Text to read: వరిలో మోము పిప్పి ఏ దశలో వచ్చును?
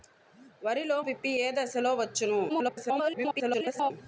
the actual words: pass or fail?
fail